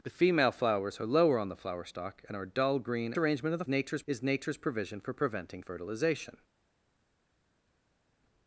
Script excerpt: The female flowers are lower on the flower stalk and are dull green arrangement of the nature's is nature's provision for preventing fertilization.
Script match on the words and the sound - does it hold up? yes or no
yes